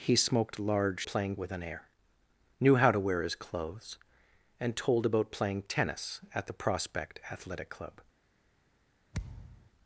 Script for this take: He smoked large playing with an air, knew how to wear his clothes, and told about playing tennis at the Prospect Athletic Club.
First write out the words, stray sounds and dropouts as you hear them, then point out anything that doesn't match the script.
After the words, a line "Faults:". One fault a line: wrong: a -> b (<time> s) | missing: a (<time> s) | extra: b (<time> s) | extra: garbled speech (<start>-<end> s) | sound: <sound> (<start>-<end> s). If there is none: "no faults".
He smoked large playing with an air, knew how to wear his clothes, and told about playing tennis at the Prospect Athletic Club.
Faults:
sound: thud (9.1-9.7 s)